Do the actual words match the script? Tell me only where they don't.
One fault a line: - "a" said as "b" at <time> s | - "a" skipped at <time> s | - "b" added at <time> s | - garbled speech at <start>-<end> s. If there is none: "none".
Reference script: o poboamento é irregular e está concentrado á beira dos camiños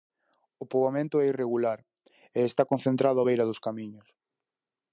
none